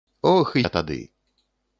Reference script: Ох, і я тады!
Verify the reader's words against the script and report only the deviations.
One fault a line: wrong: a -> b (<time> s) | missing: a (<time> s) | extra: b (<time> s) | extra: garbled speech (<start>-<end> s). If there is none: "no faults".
no faults